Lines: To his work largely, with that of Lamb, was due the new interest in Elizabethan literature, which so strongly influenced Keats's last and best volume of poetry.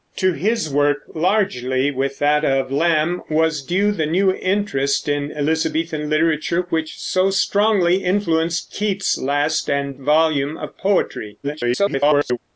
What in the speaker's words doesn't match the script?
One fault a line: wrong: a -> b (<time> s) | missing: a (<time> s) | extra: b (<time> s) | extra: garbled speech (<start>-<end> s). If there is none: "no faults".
missing: best (9.9 s)
extra: garbled speech (11.4-12.4 s)